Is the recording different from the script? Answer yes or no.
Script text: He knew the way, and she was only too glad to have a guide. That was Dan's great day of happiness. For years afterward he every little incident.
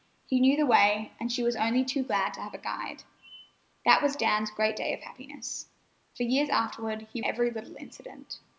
no